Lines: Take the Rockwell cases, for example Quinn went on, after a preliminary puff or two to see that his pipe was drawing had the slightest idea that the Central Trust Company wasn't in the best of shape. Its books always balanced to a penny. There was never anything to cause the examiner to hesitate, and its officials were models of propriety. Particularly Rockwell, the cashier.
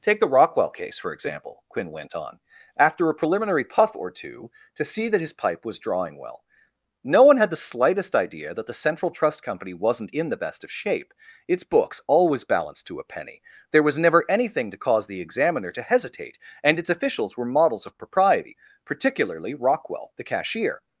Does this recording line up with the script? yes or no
no